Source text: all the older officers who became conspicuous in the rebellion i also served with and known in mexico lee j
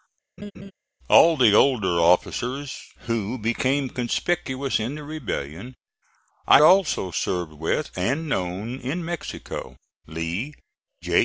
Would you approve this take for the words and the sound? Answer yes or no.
no